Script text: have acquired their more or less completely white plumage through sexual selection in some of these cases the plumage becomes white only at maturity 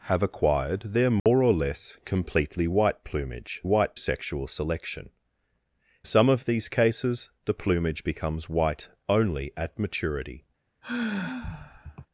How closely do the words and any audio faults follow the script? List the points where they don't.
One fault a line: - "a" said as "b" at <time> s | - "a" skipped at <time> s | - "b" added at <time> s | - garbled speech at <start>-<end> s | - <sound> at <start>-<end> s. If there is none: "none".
- dropout at 1.2-1.3 s
- "through" said as "white" at 3.6 s
- "in" skipped at 5.1 s
- sigh at 10.8-12.1 s